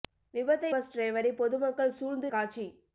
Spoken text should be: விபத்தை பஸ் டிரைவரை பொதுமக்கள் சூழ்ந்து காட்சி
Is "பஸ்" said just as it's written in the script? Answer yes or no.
yes